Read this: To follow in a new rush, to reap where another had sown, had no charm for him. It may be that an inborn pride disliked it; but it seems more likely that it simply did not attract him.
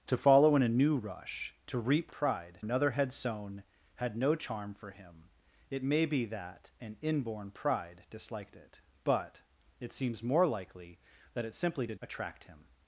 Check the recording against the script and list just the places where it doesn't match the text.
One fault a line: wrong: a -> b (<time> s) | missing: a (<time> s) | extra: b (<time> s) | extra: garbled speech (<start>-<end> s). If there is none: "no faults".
wrong: where -> pride (2.1 s)
missing: not (12.0 s)